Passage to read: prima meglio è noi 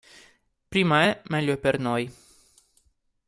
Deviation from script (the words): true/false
true